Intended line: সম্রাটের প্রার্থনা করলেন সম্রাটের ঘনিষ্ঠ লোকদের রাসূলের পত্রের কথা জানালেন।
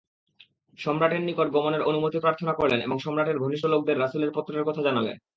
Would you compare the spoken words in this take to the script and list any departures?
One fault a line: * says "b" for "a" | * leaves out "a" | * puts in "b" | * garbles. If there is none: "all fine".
* puts in "নিকট গমনের অনুমতি"
* puts in "এবং"